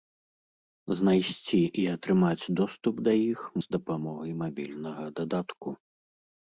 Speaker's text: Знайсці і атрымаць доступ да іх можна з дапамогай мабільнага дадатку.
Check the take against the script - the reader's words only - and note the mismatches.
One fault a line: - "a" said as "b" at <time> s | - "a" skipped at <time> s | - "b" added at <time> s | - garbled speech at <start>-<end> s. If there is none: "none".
- "можна" skipped at 3.4 s